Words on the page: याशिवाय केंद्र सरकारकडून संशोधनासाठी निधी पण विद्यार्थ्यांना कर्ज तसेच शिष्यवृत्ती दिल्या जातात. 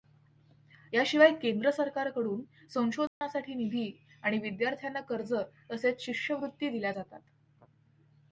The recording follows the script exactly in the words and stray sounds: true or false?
false